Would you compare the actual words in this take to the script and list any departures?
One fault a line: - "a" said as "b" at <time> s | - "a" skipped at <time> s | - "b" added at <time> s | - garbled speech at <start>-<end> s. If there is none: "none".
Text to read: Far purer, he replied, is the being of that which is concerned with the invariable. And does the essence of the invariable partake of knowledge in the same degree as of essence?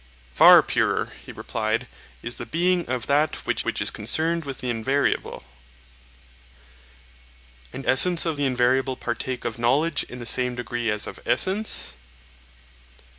- "which" added at 3.6 s
- "does the" skipped at 7.8 s